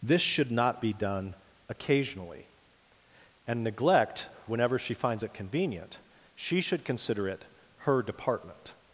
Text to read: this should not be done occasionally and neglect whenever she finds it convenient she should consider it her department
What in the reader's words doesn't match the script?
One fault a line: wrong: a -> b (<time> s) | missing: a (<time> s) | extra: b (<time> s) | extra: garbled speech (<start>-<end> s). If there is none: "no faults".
no faults